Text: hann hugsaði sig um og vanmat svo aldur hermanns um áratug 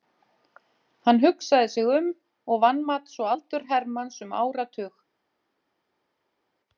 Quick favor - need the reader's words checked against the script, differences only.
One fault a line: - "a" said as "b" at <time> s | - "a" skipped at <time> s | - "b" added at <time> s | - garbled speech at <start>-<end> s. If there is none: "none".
none